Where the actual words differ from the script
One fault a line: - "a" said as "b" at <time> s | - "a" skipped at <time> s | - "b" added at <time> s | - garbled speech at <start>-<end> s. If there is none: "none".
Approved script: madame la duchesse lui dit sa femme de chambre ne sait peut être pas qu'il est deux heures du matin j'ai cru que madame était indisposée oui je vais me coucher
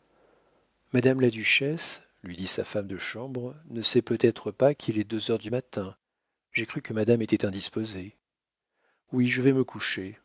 none